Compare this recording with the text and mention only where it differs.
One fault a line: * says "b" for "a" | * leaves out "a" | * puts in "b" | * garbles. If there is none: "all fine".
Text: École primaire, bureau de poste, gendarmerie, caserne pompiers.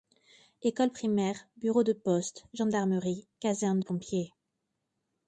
all fine